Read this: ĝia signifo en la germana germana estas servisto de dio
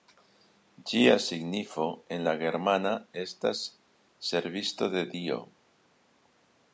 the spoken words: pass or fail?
fail